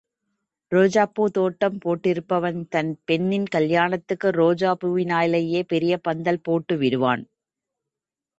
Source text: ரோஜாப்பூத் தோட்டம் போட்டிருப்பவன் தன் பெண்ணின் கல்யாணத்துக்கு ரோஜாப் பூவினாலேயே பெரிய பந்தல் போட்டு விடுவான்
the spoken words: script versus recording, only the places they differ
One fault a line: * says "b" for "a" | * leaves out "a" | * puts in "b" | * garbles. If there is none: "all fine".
all fine